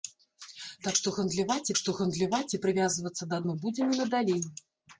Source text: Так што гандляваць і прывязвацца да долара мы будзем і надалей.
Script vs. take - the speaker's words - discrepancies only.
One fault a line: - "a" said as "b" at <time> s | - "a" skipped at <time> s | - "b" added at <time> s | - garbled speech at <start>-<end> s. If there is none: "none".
- "што гандляваць" added at 1.8 s
- "долара" skipped at 3.4 s